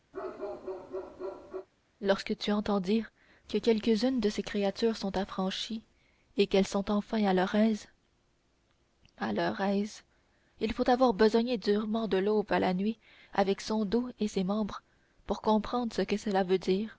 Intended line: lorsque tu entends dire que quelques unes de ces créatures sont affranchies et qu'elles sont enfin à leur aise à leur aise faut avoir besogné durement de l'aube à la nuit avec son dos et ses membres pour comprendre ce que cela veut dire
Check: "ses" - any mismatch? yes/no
no